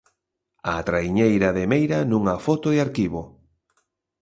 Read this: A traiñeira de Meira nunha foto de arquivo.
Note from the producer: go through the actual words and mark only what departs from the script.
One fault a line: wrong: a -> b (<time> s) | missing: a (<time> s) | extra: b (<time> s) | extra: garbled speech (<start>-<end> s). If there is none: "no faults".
no faults